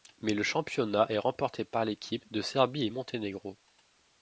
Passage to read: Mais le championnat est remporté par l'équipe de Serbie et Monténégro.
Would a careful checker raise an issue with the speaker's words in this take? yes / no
no